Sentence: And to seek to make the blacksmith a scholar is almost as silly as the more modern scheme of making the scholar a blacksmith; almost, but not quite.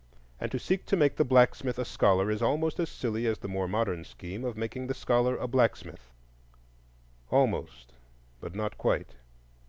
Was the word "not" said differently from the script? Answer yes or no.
no